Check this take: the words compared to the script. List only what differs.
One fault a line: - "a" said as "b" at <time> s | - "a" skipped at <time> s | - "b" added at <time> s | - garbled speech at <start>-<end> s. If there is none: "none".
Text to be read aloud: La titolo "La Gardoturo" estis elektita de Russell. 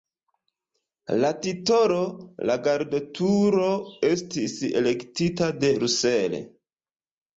none